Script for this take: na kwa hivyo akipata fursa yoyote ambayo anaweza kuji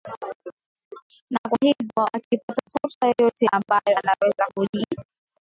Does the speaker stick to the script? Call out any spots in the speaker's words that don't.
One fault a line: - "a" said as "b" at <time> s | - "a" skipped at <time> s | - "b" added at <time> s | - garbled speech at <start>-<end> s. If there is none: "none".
none